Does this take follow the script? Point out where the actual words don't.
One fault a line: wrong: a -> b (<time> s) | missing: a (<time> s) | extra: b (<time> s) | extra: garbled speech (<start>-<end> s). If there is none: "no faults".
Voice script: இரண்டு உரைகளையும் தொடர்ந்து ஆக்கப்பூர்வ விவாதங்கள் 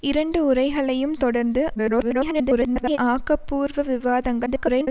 extra: garbled speech (1.8-3.0 s)
extra: garbled speech (4.5-4.9 s)